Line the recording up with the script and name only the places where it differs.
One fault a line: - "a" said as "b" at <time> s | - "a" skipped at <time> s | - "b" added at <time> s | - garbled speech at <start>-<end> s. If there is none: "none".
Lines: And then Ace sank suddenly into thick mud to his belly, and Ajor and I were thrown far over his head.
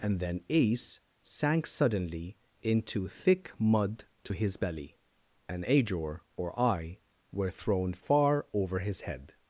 - "and" said as "or" at 6.4 s